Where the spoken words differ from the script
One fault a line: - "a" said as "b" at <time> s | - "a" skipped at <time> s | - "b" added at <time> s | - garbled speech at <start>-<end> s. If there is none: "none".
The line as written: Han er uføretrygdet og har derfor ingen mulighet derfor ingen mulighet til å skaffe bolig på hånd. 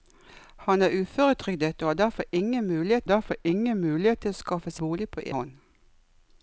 none